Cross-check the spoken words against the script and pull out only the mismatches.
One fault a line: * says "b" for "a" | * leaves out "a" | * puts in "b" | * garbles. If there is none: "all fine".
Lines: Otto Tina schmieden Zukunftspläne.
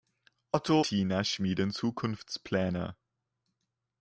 all fine